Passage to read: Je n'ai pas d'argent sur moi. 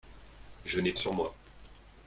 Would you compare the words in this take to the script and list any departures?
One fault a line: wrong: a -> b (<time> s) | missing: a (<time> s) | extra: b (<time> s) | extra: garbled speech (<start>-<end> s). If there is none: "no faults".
missing: pas d'argent (0.9 s)